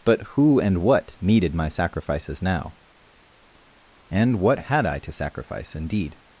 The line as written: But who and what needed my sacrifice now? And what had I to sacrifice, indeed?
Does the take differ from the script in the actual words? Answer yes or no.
yes